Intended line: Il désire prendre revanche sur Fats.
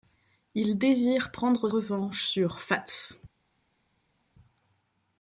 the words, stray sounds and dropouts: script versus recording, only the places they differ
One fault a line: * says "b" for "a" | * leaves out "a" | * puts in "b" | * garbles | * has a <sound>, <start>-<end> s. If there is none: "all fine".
all fine